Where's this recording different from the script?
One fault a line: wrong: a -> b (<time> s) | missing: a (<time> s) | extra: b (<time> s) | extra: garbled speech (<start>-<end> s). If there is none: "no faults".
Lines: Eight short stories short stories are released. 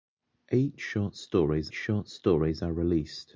no faults